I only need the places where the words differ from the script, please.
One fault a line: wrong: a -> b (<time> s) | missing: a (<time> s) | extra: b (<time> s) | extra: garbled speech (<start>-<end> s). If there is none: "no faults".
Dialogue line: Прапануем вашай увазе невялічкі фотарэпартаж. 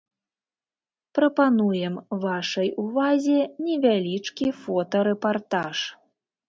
no faults